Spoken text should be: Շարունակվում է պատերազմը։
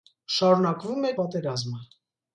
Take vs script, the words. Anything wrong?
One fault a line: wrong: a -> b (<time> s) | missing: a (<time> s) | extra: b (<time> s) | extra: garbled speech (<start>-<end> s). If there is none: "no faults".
no faults